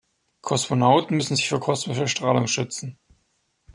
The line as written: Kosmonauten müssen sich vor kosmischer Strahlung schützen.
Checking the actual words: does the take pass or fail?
pass